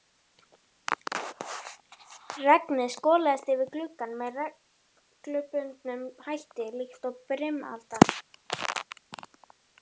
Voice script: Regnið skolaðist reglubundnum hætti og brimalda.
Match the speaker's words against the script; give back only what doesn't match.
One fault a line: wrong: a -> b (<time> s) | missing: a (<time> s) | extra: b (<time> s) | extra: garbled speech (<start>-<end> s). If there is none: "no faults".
extra: yfir gluggann með (3.5 s)
extra: líkt (6.8 s)